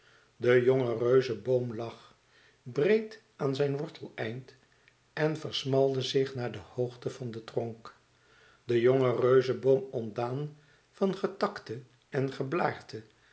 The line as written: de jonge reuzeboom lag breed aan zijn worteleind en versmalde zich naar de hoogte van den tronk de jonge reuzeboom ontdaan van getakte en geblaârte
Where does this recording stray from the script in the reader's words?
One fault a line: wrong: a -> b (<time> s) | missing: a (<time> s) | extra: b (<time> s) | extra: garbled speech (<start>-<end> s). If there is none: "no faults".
no faults